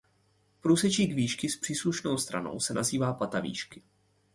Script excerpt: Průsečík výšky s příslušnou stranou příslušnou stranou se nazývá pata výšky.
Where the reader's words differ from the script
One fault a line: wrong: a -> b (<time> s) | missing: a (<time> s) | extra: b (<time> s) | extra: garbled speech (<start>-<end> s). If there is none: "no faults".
missing: příslušnou stranou (2.6 s)